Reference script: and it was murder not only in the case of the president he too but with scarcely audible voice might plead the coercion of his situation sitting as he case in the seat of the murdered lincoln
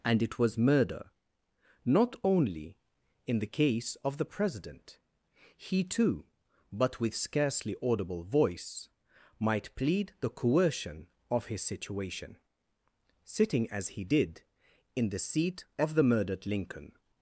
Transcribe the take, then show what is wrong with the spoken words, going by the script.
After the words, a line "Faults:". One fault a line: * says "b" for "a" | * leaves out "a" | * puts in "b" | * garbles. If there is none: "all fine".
and it was murder not only in the case of the president he too but with scarcely audible voice might plead the coercion of his situation sitting as he did in the seat of the murdered lincoln
Faults:
* says "did" for "case"